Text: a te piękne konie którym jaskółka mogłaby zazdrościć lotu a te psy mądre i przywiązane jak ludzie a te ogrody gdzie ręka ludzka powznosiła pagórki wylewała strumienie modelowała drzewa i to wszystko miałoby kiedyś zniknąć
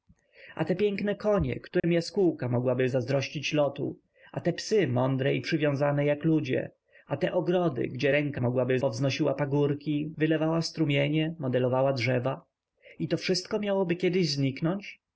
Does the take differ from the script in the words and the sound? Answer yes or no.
yes